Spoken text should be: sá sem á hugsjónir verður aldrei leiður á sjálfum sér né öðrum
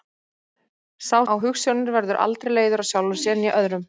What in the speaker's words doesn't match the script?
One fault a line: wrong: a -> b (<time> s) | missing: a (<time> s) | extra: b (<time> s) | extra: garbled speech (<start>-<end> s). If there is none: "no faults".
missing: sem (1.2 s)